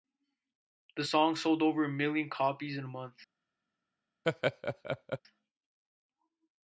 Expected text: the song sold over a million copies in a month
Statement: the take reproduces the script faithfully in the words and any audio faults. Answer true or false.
false